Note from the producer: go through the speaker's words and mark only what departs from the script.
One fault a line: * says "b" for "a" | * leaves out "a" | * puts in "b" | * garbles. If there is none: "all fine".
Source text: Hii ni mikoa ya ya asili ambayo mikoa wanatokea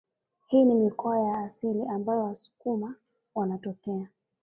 * leaves out "ya"
* says "wasukuma" for "mikoa"